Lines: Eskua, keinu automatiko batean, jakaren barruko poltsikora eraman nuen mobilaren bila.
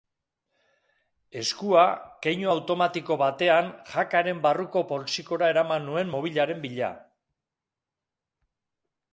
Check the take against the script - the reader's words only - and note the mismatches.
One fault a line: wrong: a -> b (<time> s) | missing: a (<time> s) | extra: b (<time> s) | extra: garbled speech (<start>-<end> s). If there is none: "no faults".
no faults